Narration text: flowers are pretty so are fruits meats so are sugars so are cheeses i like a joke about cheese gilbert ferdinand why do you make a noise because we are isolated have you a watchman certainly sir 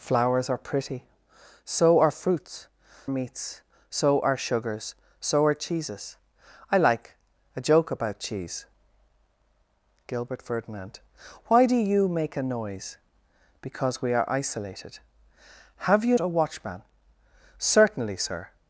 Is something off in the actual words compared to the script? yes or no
no